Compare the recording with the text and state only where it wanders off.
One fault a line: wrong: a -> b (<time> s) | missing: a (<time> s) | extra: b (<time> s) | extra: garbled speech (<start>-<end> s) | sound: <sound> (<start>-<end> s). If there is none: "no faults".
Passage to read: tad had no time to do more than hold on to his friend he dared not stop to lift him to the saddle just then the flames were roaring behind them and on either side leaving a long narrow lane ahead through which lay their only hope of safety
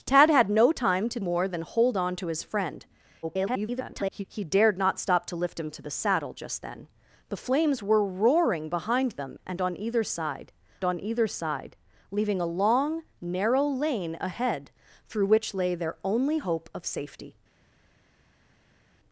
missing: do (1.2 s)
extra: garbled speech (3.2-4.2 s)
extra: on either side (10.8 s)